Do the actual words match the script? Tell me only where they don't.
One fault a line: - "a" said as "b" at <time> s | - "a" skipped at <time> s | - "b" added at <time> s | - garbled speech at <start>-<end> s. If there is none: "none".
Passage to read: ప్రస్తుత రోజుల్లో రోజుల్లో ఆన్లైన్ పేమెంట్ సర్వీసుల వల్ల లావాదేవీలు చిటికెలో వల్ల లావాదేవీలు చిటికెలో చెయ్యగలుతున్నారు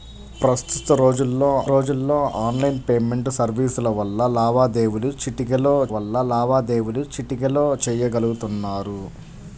none